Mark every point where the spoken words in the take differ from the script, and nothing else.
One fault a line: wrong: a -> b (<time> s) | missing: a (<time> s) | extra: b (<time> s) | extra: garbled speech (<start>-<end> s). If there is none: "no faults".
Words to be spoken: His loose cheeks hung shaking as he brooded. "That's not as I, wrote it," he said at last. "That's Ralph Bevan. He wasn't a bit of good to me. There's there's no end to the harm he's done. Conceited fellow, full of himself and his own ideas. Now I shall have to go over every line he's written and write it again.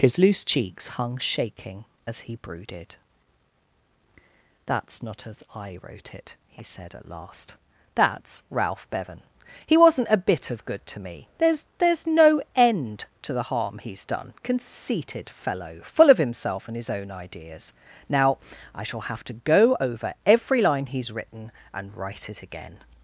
no faults